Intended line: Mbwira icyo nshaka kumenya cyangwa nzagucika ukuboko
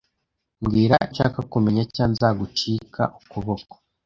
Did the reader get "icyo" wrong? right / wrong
wrong